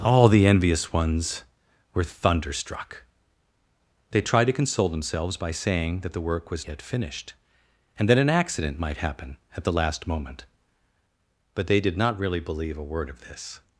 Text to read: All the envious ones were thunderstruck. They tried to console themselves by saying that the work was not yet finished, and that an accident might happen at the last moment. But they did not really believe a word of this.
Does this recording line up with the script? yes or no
no